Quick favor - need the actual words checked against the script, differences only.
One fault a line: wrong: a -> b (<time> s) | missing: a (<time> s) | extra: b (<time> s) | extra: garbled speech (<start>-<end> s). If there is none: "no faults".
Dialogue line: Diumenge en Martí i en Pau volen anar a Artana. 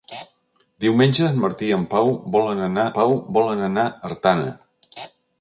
extra: Pau volen anar (3.0 s)